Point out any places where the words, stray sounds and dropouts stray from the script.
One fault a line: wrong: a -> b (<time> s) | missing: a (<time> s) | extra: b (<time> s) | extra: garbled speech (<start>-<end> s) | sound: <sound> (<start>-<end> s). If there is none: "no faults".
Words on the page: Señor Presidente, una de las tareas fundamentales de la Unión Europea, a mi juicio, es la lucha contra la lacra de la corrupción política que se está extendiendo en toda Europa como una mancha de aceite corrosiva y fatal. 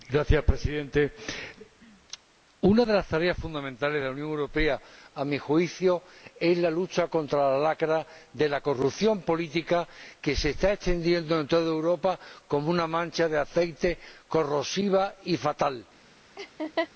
sound: laugh (16.4-16.9 s)